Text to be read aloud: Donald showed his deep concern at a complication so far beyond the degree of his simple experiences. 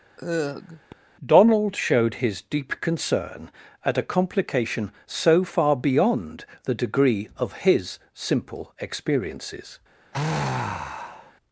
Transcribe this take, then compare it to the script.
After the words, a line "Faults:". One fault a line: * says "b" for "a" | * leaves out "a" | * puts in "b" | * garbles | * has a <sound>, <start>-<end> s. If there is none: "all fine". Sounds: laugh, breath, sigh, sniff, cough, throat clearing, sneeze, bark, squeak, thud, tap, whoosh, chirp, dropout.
Donald showed his deep concern at a complication so far beyond the degree of his simple experiences.
Faults:
* has a sigh, 0.2-0.9 s
* has a sigh, 10.1-11.3 s